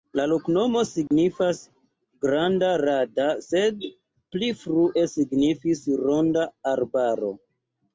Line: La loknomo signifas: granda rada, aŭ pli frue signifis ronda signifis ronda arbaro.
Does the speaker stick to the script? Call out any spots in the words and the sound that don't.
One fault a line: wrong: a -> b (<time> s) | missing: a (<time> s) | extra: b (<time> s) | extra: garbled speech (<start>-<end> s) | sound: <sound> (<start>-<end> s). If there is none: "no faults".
sound: dropout (1.1-1.1 s)
wrong: aŭ -> sed (3.5 s)
missing: signifis ronda (6.5 s)